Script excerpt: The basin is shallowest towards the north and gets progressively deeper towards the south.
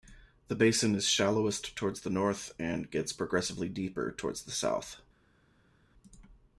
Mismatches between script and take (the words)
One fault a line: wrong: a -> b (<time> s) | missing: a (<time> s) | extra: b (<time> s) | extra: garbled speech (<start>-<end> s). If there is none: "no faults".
no faults